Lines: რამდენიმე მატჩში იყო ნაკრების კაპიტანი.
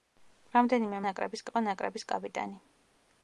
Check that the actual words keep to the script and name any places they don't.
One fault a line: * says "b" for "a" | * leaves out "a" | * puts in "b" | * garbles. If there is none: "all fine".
* says "ნაკრების" for "მატჩში"